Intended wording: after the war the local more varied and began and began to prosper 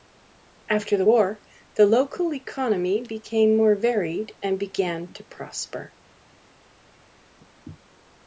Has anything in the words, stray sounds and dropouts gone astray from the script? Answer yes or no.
yes